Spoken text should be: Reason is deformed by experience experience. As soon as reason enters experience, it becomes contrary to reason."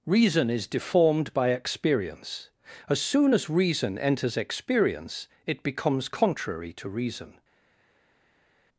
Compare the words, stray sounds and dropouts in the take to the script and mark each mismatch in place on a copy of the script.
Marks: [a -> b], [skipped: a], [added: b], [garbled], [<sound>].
Reason is deformed by experience [skipped: experience.] As soon as reason enters experience, it becomes contrary to reason."